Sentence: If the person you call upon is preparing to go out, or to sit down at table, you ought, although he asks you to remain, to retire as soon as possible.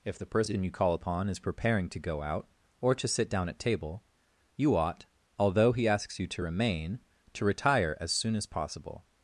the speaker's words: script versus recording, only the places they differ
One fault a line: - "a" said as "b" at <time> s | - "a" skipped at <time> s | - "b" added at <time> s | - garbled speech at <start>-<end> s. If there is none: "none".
none